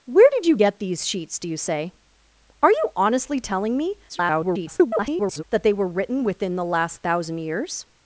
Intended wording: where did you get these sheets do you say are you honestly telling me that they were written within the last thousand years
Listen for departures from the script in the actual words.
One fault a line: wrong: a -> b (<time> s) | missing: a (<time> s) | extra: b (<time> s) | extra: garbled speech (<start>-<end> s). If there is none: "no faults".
extra: garbled speech (4.1-5.4 s)